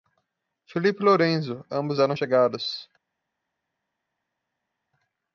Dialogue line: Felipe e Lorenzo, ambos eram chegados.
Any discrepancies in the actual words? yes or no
no